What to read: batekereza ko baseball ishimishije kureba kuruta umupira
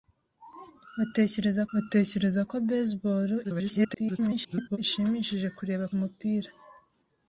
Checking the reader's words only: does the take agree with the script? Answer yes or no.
no